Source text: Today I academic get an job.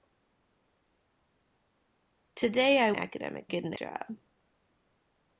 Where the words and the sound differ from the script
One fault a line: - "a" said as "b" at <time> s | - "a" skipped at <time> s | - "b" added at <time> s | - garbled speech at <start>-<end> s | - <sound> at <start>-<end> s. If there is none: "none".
none